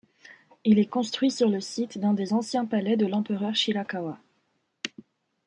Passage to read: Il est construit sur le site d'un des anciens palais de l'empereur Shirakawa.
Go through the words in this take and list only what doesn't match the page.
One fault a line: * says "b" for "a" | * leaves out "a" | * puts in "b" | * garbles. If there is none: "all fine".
all fine